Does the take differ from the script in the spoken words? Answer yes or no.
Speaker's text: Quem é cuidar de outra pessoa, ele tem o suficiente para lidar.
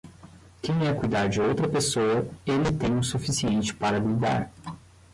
no